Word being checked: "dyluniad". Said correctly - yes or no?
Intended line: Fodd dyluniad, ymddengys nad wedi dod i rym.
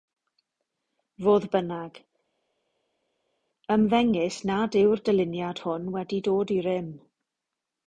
no